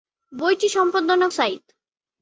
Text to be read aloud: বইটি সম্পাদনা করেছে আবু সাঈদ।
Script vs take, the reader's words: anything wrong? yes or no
yes